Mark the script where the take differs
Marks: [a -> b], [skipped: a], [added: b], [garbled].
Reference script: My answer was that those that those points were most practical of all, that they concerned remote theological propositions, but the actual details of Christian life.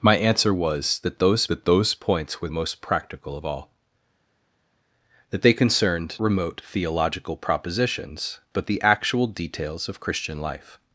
My answer was that those that those points were most practical of all, that they concerned remote theological propositions, but the actual details of Christian life.